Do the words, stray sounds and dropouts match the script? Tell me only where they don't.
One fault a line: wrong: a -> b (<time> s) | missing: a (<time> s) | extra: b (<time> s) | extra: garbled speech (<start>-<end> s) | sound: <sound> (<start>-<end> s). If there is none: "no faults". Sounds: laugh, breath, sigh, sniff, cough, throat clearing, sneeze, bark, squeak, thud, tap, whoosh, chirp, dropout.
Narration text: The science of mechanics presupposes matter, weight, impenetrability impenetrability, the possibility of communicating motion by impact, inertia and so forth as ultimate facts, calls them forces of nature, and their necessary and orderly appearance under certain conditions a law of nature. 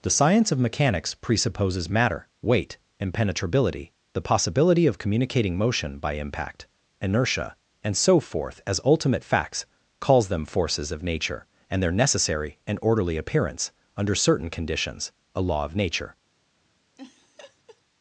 missing: impenetrability (3.9 s)
sound: laugh (17.0-17.8 s)